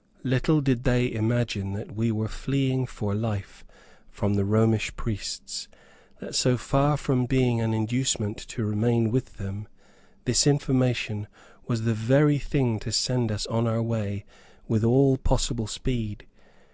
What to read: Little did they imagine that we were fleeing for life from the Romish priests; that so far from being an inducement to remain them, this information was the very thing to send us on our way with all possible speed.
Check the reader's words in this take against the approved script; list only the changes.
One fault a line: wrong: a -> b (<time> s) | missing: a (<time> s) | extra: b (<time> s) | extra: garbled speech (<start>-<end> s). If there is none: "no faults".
extra: with (9.1 s)